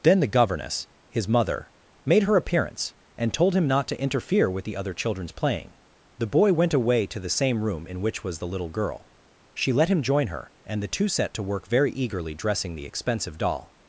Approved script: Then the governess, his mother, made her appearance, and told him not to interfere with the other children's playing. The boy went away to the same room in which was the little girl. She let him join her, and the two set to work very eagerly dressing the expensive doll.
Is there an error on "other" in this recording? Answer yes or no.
no